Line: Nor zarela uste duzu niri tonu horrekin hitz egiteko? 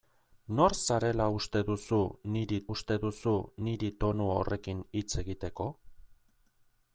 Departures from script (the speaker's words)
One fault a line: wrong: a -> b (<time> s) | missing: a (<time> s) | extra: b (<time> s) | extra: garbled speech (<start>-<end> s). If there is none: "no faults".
extra: uste duzu niri (2.7 s)